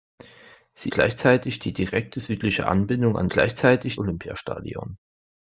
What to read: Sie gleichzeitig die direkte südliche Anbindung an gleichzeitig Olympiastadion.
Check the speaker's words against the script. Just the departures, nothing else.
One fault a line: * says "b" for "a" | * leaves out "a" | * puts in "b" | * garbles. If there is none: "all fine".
all fine